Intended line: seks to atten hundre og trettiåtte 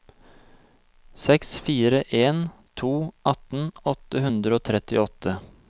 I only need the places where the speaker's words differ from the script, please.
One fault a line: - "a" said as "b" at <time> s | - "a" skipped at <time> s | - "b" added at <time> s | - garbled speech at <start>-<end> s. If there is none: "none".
- "fire en" added at 1.7 s
- "åtte" added at 3.9 s